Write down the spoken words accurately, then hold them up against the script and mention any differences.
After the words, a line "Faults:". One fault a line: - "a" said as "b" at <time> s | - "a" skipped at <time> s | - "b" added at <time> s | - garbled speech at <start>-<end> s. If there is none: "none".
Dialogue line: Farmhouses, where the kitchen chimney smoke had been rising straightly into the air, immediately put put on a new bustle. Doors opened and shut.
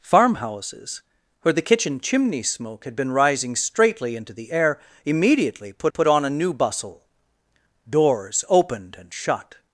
Farmhouses, where the kitchen chimney smoke had been rising straightly into the air, immediately put put on a new bustle. Doors opened and shut.
Faults:
none